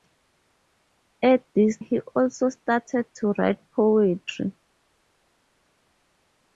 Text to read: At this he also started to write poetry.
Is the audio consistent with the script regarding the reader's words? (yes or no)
yes